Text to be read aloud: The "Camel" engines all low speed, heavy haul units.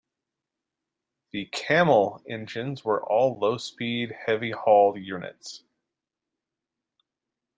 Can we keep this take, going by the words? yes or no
no